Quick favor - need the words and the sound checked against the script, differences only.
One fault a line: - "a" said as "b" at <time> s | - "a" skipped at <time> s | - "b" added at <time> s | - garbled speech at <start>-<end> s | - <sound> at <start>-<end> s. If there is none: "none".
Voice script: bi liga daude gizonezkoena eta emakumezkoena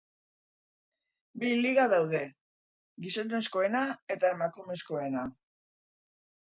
none